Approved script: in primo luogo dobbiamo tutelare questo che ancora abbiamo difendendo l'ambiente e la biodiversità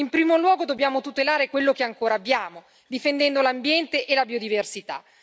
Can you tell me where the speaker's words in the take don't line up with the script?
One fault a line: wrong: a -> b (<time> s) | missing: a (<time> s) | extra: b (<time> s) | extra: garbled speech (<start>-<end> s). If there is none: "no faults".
wrong: questo -> quello (1.5 s)